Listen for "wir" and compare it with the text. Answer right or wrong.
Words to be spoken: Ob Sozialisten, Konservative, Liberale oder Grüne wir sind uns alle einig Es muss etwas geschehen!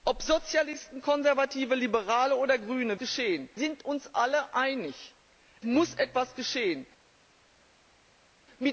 wrong